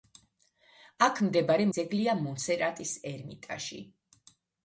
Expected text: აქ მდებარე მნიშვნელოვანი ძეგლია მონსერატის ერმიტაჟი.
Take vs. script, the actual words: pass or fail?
fail